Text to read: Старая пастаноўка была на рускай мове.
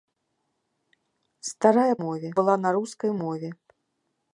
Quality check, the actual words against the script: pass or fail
fail